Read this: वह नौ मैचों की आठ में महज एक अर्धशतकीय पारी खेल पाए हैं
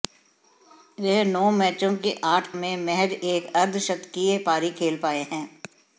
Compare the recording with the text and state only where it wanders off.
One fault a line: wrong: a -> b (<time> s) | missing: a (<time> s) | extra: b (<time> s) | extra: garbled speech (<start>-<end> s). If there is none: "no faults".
no faults